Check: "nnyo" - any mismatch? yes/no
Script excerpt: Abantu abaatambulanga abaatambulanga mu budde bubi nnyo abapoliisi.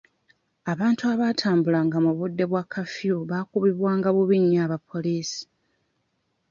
no